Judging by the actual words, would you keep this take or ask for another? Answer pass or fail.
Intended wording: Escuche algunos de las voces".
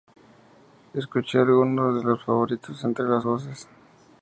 fail